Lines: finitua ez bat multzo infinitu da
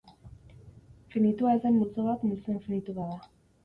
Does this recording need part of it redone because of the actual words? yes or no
yes